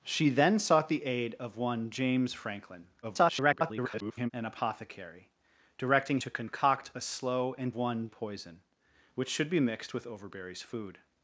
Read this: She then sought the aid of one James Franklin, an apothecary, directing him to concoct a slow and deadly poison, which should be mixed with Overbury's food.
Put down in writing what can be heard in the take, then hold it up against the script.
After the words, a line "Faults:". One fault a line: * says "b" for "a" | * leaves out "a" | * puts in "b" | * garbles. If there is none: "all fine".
She then sought the aid of one James Franklin, [garbled] an apothecary, directing to concoct a slow and one poison, which should be mixed with Overbury's food.
Faults:
* garbles
* leaves out "him"
* says "one" for "deadly"